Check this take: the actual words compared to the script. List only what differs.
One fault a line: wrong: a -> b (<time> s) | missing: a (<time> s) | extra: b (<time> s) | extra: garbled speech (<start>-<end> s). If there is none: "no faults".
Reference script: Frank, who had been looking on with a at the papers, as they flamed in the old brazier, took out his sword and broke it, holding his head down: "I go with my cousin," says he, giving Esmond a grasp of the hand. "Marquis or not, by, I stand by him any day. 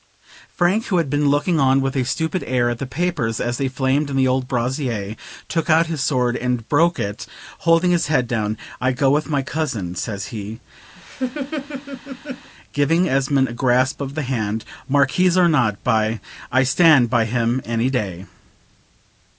extra: stupid air (2.0 s)